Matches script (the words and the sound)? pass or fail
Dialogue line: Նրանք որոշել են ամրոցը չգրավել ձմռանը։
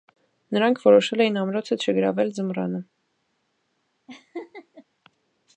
fail